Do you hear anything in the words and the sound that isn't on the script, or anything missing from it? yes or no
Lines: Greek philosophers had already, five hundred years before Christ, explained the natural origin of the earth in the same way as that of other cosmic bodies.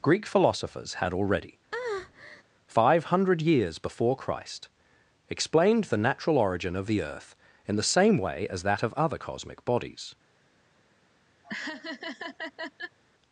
yes